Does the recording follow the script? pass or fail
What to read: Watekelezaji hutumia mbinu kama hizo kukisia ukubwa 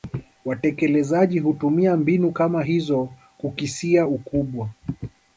pass